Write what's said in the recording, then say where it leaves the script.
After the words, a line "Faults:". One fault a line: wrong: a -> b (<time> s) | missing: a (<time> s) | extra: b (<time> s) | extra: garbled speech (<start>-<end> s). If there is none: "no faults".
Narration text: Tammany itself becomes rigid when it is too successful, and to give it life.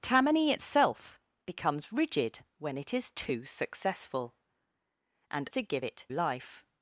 Tammany itself becomes rigid when it is too successful, and to give it life.
Faults:
no faults